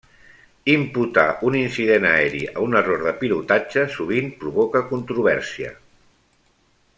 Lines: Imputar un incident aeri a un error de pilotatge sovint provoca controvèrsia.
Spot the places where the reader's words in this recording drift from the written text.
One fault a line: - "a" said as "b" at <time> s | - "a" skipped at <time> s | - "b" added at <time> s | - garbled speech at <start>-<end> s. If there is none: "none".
none